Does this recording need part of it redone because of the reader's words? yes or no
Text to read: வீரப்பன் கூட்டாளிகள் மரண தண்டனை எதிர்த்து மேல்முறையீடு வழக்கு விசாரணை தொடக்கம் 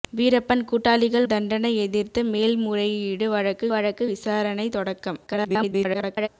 yes